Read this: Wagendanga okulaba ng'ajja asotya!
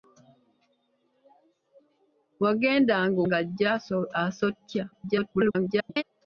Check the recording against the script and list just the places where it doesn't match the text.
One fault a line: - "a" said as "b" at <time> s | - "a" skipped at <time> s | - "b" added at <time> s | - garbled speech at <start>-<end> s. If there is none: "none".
- "okulaba" skipped at 3.2 s
- garbled speech at 4.9-6.0 s